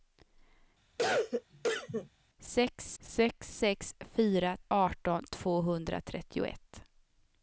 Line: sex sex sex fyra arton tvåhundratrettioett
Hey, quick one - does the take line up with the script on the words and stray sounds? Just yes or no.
no